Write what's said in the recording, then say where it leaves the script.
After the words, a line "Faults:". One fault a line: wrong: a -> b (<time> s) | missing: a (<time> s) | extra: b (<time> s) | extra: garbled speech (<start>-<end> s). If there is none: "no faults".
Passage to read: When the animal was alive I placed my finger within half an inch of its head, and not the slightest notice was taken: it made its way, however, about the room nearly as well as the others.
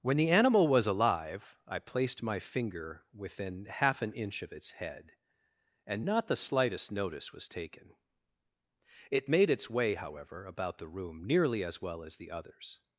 When the animal was alive I placed my finger within half an inch of its head, and not the slightest notice was taken: it made its way, however, about the room nearly as well as the others.
Faults:
no faults